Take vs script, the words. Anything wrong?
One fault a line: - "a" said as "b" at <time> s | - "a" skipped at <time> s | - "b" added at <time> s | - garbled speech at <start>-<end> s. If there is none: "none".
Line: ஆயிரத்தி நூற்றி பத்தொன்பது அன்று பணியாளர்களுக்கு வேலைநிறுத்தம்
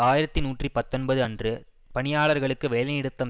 none